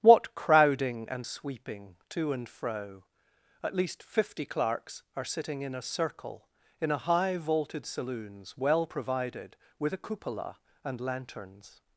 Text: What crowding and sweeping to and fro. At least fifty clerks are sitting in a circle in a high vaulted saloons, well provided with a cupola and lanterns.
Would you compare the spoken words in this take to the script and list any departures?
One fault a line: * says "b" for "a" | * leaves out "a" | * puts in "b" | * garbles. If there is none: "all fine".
all fine